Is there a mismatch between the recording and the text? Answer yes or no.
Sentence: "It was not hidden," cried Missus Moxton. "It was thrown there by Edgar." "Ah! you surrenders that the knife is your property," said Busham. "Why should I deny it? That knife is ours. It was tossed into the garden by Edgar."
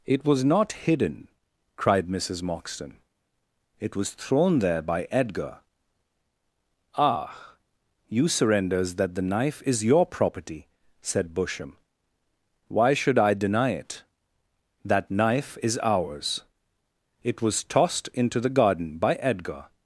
no